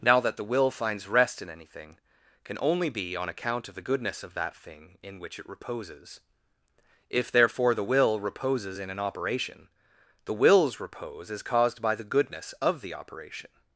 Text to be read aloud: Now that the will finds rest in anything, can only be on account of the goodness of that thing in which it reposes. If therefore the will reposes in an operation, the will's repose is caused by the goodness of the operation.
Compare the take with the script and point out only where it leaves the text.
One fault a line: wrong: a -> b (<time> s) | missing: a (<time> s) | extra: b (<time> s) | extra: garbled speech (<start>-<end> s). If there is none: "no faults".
no faults